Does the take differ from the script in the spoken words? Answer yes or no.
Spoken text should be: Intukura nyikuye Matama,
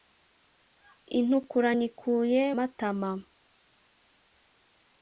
no